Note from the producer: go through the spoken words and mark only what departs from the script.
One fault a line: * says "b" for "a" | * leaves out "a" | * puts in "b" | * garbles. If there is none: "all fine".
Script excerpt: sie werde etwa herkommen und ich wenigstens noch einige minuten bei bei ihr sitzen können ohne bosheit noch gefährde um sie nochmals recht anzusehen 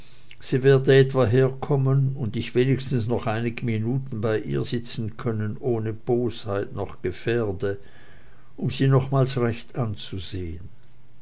* leaves out "bei"